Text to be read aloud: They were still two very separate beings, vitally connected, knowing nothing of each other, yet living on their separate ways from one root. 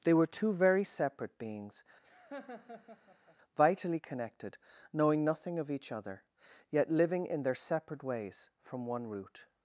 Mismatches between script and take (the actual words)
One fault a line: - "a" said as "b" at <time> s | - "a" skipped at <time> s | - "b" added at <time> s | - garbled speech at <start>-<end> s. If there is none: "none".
- "still" skipped at 0.3 s
- "on" said as "in" at 7.2 s